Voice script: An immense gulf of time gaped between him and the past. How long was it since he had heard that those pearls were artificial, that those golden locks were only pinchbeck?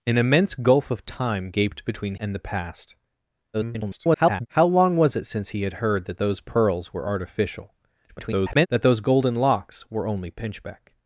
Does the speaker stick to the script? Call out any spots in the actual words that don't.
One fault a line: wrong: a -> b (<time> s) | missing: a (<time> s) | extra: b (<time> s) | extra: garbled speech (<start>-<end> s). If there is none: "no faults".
missing: him (2.1 s)
extra: garbled speech (3.5-4.5 s)
extra: garbled speech (8.1-8.7 s)